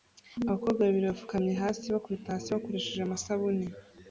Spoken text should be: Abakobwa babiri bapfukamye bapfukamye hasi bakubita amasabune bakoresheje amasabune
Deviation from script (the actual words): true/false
true